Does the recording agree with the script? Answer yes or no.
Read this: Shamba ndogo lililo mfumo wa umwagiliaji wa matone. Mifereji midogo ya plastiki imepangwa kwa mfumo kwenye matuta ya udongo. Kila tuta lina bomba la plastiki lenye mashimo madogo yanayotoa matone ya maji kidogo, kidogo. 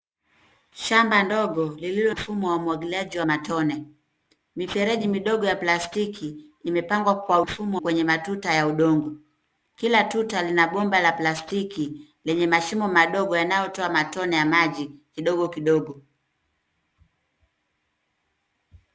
yes